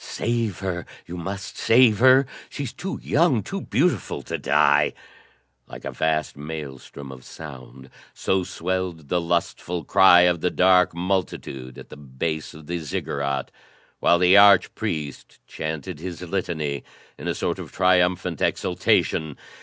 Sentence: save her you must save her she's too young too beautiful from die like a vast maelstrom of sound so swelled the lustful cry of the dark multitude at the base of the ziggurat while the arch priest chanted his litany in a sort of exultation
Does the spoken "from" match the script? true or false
false